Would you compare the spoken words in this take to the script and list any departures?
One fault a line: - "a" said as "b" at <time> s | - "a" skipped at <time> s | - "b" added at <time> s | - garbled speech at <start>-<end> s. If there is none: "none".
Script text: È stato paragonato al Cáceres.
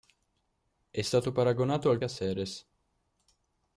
none